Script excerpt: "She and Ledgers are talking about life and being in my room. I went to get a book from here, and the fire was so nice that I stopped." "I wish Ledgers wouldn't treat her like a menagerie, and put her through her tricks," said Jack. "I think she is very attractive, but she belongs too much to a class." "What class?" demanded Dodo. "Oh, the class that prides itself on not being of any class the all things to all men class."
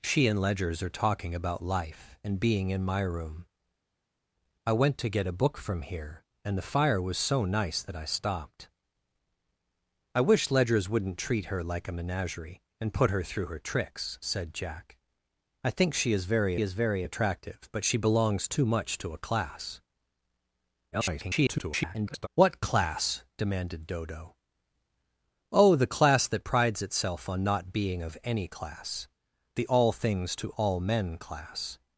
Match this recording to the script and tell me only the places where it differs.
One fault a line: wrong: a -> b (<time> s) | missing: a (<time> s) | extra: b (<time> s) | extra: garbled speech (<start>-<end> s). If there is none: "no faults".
extra: is very (16.6 s)
extra: garbled speech (20.9-22.3 s)